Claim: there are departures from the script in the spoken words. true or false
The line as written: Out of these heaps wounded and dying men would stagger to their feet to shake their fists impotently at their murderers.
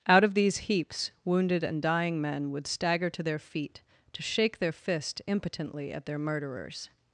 true